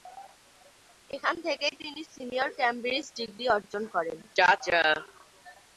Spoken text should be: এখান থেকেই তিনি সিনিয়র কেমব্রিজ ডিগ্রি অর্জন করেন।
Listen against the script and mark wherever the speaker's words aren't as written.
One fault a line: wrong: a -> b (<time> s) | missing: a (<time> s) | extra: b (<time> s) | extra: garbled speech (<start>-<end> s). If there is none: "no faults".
no faults